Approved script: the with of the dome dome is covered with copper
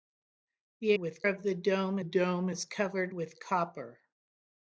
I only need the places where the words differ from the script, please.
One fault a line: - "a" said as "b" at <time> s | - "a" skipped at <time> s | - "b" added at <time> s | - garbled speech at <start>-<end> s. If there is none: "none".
none